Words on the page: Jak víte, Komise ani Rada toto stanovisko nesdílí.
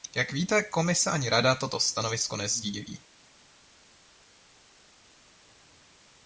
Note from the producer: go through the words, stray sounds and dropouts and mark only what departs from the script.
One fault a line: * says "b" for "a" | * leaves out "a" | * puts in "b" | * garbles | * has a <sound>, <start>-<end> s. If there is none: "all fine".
all fine